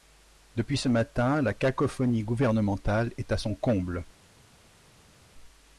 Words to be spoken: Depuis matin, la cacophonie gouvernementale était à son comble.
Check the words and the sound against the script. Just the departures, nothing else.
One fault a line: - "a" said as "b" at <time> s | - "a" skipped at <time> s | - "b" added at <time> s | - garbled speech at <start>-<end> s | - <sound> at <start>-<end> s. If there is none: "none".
- "ce" added at 0.8 s
- "était" said as "est" at 3.2 s